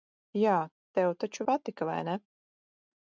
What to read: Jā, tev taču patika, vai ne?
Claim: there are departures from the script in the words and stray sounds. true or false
false